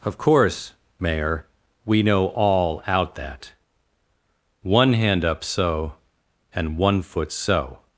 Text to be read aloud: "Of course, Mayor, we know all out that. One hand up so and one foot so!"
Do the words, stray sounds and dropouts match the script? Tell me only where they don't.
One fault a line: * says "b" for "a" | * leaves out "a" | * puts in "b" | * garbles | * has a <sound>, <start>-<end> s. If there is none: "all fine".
all fine